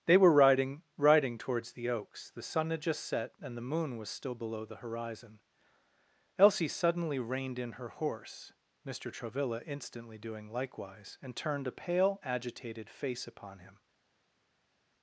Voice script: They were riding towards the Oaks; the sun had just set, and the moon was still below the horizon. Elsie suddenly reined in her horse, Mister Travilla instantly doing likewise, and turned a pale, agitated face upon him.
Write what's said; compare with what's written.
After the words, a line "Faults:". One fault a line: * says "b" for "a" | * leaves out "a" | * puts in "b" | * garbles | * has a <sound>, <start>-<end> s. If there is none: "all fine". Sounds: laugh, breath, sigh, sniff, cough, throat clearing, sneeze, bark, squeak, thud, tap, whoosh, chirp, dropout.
They were riding riding towards the Oaks; the sun had just set, and the moon was still below the horizon. Elsie suddenly reined in her horse, Mister Travilla instantly doing likewise, and turned a pale, agitated face upon him.
Faults:
* puts in "riding"